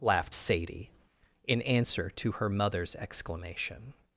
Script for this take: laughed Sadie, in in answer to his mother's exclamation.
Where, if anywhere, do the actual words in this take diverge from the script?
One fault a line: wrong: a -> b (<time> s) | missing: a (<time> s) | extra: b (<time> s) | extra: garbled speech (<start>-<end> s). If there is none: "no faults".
missing: in (1.6 s)
wrong: his -> her (2.3 s)